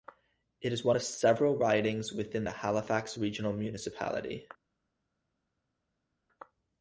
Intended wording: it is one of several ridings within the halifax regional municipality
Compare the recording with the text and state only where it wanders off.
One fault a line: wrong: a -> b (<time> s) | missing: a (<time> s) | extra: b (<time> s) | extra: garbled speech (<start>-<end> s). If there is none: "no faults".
no faults